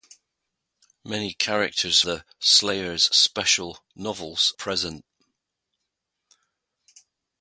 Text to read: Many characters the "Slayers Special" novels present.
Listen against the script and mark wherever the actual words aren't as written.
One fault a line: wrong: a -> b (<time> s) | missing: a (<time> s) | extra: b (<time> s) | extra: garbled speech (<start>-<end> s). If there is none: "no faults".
no faults